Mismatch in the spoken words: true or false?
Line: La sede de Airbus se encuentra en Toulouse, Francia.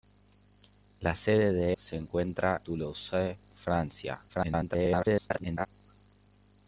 true